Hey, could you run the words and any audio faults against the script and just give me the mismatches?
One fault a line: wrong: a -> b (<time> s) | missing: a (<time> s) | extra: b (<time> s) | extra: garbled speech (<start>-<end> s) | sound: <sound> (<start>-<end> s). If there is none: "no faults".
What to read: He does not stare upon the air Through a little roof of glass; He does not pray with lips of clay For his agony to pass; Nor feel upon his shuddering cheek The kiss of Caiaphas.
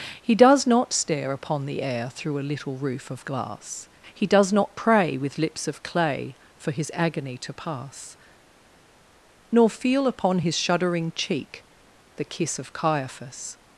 no faults